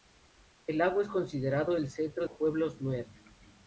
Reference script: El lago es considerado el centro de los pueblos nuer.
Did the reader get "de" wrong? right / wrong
wrong